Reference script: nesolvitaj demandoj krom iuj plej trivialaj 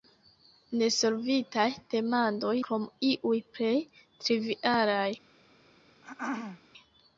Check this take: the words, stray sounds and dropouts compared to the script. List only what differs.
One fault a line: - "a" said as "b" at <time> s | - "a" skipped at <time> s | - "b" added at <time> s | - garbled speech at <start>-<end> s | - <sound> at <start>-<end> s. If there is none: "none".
- throat clearing at 6.0-6.6 s